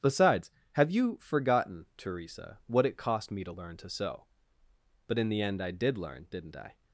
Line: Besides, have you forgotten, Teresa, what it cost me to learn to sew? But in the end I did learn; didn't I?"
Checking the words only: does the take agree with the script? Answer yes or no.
yes